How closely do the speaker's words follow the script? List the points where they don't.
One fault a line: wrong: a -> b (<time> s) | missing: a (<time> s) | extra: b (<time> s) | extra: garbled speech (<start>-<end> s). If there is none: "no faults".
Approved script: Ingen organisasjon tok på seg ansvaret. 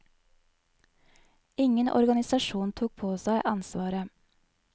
no faults